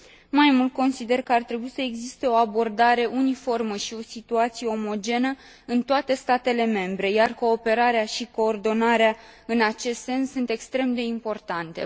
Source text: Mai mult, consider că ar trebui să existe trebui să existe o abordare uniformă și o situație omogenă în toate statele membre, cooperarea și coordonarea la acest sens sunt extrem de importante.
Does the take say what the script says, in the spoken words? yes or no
no